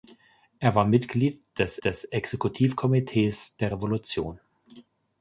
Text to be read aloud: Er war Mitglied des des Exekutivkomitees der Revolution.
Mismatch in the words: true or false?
false